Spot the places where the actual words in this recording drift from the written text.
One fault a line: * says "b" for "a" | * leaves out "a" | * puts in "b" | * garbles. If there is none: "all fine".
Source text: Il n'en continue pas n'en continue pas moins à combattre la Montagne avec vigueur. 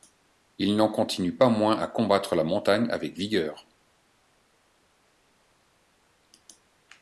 * leaves out "n'en continue pas"